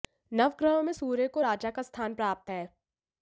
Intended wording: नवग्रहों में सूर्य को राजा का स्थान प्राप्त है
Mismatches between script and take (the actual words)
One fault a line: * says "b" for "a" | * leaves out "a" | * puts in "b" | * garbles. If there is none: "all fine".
all fine